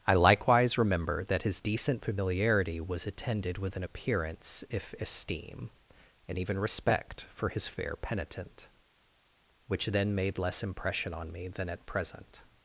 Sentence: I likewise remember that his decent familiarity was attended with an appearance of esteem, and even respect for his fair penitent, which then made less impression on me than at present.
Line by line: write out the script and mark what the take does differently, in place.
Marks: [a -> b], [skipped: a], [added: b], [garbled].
I likewise remember that his decent familiarity was attended with an appearance [of -> if] esteem, and even respect for his fair penitent, which then made less impression on me than at present.